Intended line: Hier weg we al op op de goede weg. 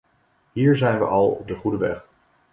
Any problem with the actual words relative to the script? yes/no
yes